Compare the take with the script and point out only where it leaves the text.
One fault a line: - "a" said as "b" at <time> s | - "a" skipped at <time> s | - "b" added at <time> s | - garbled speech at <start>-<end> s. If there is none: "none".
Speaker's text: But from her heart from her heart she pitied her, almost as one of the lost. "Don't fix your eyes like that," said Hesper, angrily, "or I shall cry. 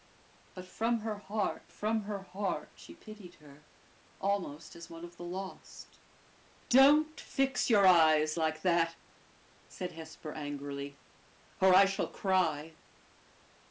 none